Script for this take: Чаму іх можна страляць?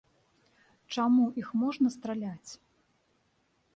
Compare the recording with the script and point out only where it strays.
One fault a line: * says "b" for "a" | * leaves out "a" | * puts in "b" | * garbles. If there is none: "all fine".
all fine